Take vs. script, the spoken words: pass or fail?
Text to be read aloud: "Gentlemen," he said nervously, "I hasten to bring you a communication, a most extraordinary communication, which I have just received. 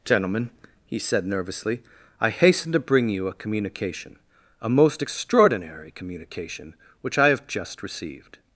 pass